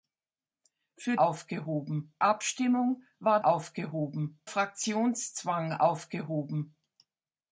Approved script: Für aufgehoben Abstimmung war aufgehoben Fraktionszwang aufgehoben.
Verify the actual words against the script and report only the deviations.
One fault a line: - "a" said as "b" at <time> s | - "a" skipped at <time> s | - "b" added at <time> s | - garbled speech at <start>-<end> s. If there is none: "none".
none